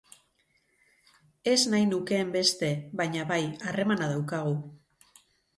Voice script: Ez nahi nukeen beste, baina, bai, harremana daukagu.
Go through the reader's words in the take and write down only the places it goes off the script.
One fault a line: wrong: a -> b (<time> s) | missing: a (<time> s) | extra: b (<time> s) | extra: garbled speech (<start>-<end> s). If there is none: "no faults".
no faults